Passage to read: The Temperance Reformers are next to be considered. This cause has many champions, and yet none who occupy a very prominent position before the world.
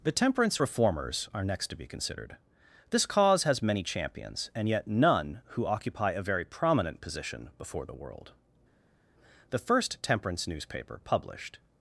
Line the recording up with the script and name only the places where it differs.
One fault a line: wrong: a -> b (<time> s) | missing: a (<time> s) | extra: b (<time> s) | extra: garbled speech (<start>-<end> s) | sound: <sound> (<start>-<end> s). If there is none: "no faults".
extra: The first temperance newspaper published (9.5 s)